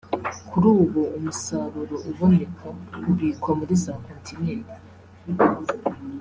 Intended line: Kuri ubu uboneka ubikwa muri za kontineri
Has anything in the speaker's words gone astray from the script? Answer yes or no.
yes